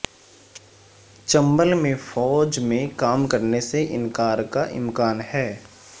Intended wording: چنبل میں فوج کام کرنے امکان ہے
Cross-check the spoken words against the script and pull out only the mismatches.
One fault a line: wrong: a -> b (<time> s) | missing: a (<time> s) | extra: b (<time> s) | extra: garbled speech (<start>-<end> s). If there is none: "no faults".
extra: میں (2.6 s)
extra: سے انکار کا (3.6 s)